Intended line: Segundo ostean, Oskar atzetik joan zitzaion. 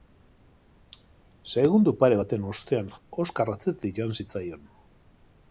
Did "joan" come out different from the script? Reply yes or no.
no